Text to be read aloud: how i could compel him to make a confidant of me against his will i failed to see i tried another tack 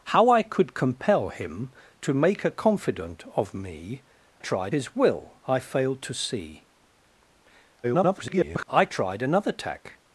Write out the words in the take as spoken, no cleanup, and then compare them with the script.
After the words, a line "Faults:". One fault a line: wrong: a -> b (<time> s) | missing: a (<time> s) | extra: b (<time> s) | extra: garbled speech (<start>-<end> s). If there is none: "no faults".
how i could compel him to make a confidant of me tried his will i failed to see [garbled] i tried another tack
Faults:
wrong: against -> tried (4.4 s)
extra: garbled speech (7.8-8.7 s)